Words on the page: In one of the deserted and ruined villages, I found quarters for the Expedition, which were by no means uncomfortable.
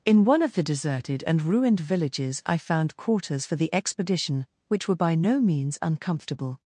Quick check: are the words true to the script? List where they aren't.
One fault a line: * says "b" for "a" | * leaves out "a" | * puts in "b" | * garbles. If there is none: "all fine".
all fine